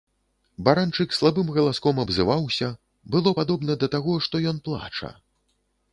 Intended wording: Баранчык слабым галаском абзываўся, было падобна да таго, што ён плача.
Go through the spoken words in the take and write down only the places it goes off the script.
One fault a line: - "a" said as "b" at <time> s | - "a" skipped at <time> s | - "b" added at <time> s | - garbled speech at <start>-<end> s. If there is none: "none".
none